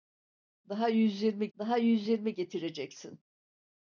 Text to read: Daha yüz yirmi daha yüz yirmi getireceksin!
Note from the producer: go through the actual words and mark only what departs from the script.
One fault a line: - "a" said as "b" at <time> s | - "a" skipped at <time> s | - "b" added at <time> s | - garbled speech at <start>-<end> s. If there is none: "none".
none